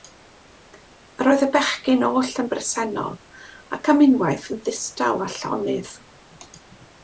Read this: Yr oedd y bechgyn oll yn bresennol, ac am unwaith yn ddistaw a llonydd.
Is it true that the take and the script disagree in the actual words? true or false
false